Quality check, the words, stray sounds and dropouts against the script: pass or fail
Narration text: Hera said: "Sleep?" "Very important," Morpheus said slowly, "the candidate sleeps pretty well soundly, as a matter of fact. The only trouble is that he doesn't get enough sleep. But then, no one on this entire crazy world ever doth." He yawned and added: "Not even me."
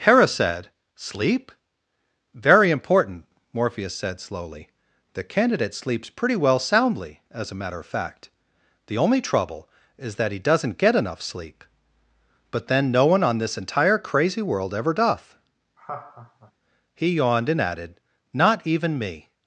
fail